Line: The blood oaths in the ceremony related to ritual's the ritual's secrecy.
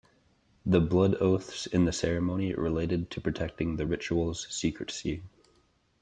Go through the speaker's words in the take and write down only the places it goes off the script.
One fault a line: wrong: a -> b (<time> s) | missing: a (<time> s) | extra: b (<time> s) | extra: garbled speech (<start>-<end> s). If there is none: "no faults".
wrong: ritual's -> protecting (3.2 s)